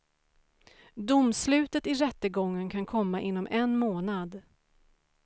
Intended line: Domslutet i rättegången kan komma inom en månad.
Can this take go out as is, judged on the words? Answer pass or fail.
pass